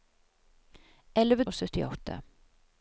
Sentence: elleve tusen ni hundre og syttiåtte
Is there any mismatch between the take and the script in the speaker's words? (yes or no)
yes